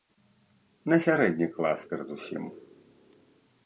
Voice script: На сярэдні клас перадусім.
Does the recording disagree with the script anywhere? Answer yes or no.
no